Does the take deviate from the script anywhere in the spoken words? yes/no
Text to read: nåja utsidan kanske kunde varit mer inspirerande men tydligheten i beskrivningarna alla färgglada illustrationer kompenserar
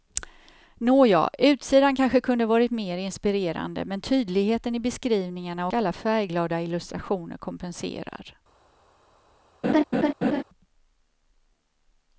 no